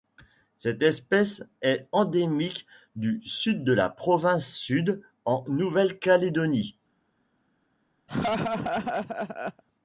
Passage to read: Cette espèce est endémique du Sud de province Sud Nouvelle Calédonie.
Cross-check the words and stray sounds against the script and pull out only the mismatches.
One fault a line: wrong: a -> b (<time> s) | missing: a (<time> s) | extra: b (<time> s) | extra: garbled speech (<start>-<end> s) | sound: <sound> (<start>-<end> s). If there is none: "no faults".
extra: la (3.7 s)
extra: en (5.2 s)
sound: laugh (8.1-9.6 s)